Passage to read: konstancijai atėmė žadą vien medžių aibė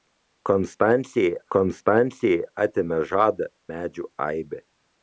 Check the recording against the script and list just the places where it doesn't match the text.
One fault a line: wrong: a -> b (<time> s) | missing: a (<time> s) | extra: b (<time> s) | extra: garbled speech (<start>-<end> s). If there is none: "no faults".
extra: konstancijai (1.5 s)
missing: vien (3.5 s)